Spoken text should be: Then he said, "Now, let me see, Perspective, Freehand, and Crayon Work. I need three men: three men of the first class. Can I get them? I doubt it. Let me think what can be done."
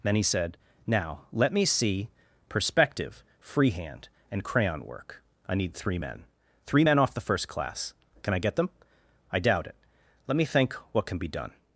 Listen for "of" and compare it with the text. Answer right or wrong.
wrong